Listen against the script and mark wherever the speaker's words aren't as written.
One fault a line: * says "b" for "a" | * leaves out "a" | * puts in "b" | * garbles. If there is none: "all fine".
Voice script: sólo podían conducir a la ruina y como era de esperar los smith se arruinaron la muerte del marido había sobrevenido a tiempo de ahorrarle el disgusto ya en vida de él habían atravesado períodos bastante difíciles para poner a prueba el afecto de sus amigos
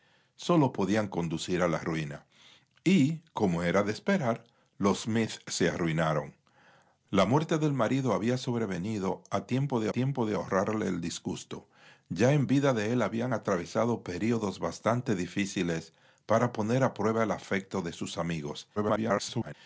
* puts in "tiempo de"
* garbles